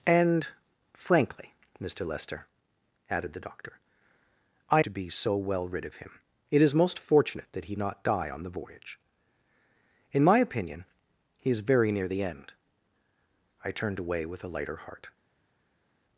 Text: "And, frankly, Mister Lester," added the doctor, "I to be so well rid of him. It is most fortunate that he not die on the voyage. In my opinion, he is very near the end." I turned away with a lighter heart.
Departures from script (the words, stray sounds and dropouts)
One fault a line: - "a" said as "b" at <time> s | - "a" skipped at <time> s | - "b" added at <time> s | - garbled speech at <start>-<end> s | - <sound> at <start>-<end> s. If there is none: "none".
none